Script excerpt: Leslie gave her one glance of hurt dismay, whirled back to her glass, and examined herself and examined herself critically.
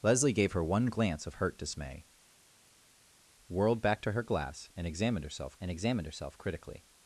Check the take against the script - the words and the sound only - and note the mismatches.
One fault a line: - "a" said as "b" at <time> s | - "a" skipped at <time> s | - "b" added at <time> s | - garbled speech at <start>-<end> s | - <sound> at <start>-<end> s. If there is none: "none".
none